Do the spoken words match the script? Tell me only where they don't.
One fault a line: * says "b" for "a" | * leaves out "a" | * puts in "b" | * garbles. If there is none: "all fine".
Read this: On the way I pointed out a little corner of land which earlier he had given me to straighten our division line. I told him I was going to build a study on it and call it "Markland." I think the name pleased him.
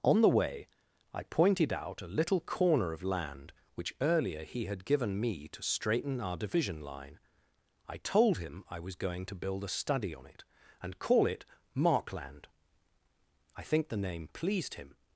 all fine